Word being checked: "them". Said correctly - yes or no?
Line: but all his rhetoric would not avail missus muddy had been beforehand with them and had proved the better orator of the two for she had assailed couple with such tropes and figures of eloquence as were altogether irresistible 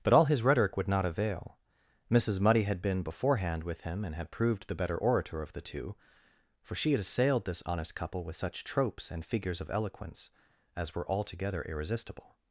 no